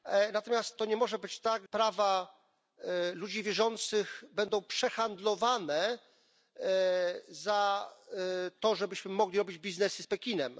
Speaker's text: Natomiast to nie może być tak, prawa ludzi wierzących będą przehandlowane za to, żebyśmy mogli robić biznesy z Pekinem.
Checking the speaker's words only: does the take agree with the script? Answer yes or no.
yes